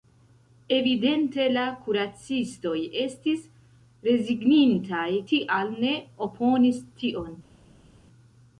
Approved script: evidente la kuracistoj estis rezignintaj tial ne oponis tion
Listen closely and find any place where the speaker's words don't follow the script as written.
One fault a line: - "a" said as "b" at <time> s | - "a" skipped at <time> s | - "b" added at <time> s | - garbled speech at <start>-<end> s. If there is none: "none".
none